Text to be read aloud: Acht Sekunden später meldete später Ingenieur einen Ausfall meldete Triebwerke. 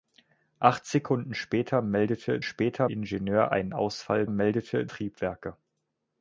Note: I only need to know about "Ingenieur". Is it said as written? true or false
true